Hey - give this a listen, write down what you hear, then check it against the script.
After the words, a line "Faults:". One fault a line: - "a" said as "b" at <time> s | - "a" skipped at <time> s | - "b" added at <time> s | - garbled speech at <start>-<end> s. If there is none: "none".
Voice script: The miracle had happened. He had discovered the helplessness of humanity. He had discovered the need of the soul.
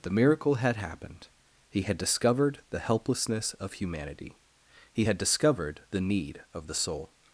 The miracle had happened. He had discovered the helplessness of humanity. He had discovered the need of the soul.
Faults:
none